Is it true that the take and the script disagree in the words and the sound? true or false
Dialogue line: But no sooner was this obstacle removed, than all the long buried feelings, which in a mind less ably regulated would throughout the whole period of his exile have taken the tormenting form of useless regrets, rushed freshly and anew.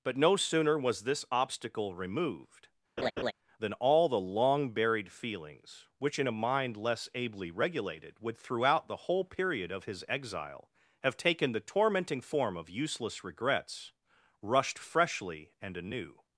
true